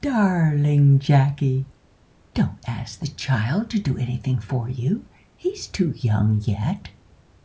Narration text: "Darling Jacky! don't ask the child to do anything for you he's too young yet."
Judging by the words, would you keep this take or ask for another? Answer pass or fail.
pass